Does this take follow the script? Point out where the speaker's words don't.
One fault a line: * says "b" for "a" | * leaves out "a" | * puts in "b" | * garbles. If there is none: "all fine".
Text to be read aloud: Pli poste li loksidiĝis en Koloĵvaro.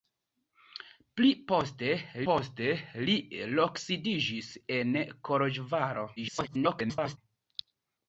* puts in "poste"
* garbles